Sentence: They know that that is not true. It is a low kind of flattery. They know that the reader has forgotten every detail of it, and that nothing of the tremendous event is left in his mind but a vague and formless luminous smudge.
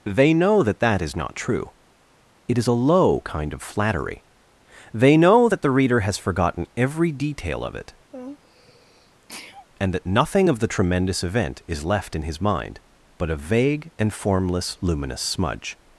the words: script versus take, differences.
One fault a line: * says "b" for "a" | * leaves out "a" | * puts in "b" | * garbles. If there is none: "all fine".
all fine